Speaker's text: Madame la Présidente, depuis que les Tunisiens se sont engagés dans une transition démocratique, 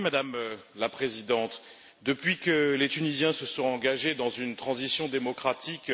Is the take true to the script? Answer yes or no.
yes